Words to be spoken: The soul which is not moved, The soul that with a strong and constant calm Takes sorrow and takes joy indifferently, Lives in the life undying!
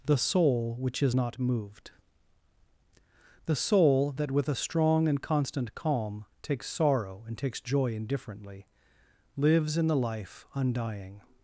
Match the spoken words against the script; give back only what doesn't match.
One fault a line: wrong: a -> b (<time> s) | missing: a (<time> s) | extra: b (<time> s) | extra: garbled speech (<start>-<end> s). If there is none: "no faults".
no faults